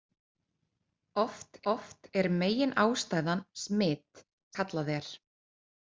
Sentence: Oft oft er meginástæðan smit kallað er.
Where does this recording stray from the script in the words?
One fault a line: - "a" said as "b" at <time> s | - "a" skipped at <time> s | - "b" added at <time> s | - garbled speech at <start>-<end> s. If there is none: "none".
none